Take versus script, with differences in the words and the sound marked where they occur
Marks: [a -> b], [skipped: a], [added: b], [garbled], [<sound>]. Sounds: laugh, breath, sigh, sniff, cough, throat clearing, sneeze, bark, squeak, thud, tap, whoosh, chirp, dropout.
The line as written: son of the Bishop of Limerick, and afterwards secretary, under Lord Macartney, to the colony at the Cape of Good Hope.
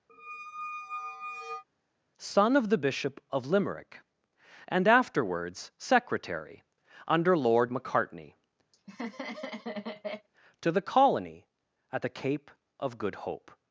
[squeak] son of the Bishop of Limerick, and afterwards secretary, under Lord Macartney, [laugh] to the colony at the Cape of Good Hope.